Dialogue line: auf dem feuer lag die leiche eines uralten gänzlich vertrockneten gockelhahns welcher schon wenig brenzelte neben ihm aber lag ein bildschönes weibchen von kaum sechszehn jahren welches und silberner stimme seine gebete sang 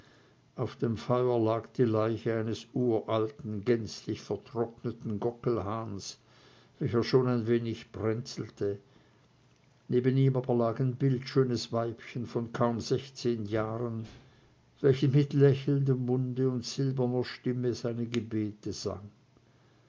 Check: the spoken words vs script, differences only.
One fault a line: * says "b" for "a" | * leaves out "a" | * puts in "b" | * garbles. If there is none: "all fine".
* puts in "ein"
* puts in "mit lächelndem munde"